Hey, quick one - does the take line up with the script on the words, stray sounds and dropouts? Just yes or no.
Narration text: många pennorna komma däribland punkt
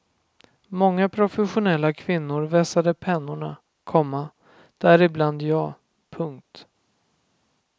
no